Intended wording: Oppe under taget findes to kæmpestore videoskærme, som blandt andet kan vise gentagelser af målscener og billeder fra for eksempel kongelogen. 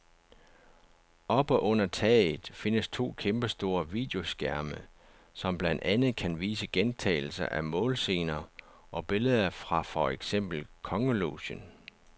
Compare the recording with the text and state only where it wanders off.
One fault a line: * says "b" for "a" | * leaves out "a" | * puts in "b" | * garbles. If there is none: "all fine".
all fine